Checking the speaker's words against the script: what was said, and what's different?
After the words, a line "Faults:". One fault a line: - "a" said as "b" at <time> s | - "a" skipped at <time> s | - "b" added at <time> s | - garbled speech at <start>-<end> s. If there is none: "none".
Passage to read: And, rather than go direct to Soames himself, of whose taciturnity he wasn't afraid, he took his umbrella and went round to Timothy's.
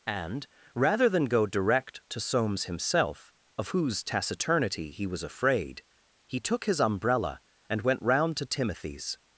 And, rather than go direct to Soames himself, of whose taciturnity he was afraid, he took his umbrella and went round to Timothy's.
Faults:
- "wasn't" said as "was" at 5.1 s